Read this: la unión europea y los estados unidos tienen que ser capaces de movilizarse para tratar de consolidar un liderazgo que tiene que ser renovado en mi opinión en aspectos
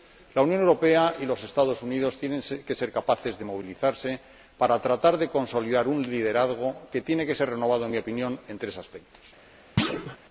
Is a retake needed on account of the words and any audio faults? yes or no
yes